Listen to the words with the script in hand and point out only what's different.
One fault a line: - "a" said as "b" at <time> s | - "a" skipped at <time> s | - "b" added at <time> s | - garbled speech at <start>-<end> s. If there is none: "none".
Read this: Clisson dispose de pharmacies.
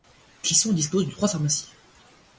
- "trois" added at 1.1 s